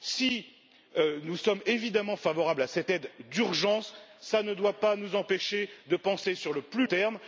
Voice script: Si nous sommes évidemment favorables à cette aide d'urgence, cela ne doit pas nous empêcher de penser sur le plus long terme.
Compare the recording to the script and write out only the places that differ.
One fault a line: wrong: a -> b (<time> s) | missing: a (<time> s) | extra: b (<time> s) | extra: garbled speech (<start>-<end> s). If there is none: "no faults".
missing: long (6.9 s)